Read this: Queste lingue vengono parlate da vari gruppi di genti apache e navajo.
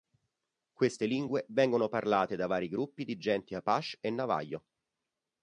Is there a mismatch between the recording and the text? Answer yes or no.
no